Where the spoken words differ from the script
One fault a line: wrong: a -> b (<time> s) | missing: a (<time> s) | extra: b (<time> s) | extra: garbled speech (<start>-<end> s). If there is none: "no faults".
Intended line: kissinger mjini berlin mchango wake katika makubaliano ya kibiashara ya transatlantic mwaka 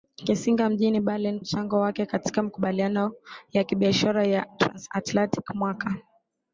no faults